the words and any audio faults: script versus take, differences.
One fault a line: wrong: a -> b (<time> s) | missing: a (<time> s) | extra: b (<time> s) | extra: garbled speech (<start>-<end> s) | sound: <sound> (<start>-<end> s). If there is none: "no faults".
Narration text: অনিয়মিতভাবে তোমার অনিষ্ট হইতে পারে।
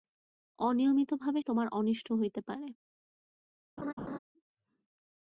sound: laugh (3.8-4.2 s)